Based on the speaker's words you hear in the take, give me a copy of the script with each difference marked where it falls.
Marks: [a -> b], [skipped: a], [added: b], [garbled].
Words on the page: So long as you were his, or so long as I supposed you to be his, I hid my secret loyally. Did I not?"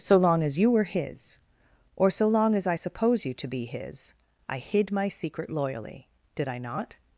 So long as you were his, or so long as I [supposed -> suppose] you to be his, I hid my secret loyally. Did I not?"